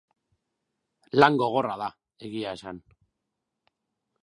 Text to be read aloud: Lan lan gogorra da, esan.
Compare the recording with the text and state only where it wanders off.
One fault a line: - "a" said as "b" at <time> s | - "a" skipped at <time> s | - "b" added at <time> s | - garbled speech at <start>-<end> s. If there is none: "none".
- "lan" skipped at 1.4 s
- "egia" added at 2.3 s